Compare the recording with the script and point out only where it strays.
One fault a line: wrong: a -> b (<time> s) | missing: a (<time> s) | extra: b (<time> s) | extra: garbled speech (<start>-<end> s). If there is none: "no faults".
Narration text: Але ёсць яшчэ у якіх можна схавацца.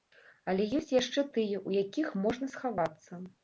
extra: тыя (1.4 s)